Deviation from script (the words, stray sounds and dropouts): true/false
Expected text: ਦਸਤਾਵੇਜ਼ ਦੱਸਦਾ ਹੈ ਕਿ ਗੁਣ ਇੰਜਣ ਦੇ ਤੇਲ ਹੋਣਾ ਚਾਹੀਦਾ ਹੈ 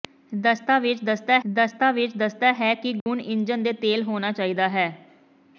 true